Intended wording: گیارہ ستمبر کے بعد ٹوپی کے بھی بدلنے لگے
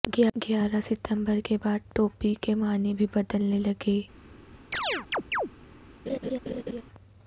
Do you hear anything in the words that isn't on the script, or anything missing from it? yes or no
yes